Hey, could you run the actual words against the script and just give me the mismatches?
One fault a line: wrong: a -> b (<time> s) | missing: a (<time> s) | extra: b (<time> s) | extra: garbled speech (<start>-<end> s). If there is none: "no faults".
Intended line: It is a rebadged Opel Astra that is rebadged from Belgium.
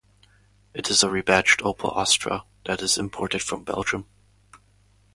wrong: rebadged -> imported (3.0 s)